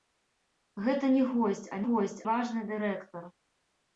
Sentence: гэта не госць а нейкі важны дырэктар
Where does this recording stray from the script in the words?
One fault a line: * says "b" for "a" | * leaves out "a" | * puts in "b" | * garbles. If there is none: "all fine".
* says "госць" for "нейкі"